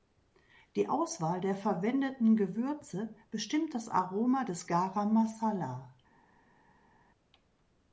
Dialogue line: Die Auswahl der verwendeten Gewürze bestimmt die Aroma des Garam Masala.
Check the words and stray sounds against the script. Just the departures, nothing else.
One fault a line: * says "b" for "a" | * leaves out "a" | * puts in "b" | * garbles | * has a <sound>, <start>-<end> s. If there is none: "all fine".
* says "das" for "die"